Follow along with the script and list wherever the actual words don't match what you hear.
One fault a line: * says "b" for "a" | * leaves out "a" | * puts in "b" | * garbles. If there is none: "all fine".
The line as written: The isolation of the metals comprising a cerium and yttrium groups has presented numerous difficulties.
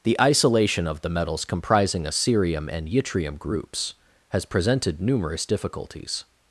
all fine